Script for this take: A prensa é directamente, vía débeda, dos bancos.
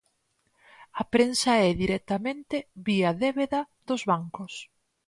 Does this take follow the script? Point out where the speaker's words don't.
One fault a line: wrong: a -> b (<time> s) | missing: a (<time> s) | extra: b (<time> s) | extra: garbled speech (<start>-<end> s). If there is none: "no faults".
no faults